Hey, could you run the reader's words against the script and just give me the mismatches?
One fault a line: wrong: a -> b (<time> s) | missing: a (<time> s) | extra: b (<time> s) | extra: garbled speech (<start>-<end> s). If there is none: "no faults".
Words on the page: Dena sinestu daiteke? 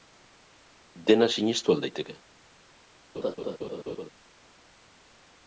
extra: al (1.8 s)